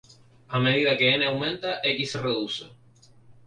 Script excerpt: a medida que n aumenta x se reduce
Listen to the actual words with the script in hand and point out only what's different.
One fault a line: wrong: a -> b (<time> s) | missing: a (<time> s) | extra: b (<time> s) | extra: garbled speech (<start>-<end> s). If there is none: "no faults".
no faults